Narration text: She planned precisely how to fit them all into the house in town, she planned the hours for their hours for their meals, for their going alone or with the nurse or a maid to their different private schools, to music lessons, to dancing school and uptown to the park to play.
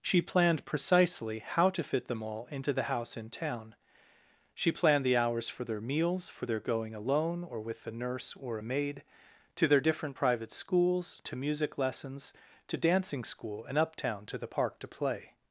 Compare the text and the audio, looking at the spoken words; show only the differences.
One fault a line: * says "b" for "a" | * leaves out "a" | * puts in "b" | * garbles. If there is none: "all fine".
* leaves out "hours for their"